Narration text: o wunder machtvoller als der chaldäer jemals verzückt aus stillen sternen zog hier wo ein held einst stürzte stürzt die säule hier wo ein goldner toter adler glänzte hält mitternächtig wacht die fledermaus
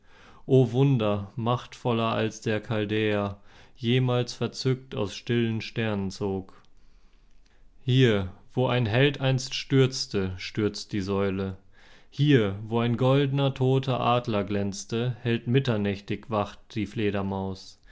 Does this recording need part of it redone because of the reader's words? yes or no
no